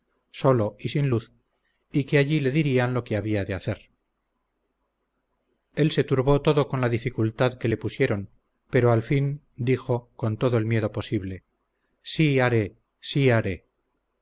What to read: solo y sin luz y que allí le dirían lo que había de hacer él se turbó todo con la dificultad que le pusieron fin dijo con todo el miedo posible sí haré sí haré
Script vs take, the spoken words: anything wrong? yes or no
yes